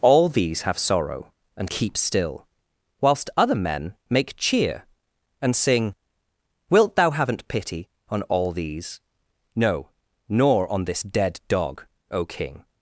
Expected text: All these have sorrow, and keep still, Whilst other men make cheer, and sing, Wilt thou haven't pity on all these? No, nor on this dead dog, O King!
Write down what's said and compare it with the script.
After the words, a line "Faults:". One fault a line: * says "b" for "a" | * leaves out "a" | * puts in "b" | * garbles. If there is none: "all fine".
All these have sorrow, and keep still, Whilst other men make cheer, and sing, Wilt thou haven't pity on all these? No, nor on this dead dog, O King!
Faults:
all fine